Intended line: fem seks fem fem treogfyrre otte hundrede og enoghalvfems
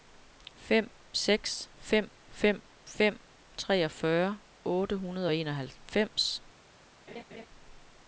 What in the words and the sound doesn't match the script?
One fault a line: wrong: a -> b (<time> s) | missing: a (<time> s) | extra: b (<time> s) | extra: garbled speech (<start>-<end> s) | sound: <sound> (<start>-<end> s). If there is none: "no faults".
extra: fem (2.8 s)
sound: laugh (7.1-7.5 s)